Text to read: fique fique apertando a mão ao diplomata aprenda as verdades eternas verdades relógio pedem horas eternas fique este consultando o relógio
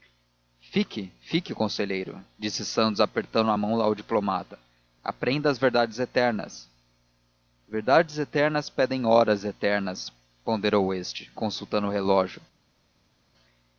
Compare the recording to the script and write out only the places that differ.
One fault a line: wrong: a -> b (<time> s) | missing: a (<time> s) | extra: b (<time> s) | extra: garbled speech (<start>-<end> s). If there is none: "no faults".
extra: conselheiro disse santos (1.5 s)
wrong: relógio -> eternas (8.2 s)
wrong: fique -> ponderou (10.4 s)